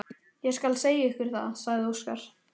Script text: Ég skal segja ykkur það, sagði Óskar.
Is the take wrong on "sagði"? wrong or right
right